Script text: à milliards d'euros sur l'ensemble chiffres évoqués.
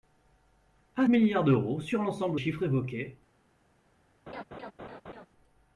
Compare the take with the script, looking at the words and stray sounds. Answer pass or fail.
fail